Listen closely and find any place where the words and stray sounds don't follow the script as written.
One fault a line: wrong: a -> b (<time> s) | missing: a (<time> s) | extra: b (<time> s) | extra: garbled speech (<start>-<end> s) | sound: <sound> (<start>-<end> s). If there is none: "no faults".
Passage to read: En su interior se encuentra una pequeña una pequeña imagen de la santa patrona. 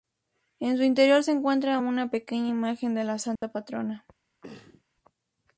missing: una pequeña (2.5 s)
sound: dropout (3.4-3.4 s)
sound: throat clearing (4.4-4.8 s)